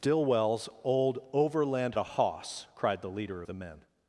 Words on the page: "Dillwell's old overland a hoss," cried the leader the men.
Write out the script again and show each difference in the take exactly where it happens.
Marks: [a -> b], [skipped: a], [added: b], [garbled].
"Dillwell's old overland a hoss," cried the leader the men.